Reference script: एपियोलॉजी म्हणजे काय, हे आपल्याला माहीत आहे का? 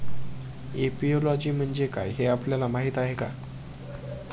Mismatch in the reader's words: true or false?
false